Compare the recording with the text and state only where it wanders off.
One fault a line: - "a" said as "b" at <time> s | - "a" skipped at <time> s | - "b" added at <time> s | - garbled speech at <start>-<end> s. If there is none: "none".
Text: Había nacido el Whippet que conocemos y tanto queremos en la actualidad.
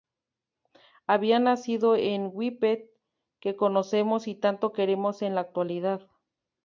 none